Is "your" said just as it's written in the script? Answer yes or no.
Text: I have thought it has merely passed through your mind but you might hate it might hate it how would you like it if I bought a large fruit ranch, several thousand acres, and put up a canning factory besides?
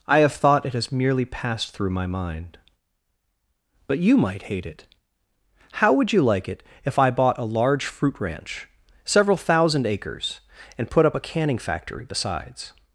no